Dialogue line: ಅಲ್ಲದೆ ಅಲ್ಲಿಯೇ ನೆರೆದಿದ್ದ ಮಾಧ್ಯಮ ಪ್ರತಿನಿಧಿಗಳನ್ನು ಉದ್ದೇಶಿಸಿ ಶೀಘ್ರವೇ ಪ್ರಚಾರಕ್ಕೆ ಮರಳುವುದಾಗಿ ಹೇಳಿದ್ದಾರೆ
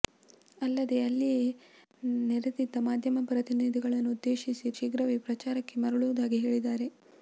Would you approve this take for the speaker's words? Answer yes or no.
yes